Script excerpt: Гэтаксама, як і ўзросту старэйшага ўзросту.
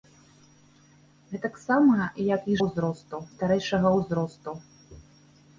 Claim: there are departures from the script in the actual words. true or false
false